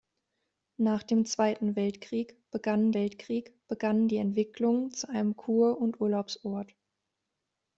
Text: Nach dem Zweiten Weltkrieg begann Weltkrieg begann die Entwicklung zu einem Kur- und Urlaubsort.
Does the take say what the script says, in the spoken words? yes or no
yes